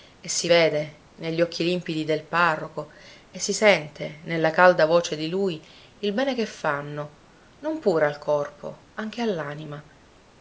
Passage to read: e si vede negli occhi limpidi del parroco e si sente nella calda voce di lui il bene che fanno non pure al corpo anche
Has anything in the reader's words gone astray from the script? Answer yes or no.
no